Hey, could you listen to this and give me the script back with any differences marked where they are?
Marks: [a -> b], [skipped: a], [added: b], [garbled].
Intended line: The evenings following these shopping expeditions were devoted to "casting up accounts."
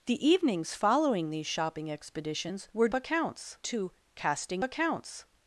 The evenings following these shopping expeditions were [devoted -> accounts] to "casting [skipped: up] accounts."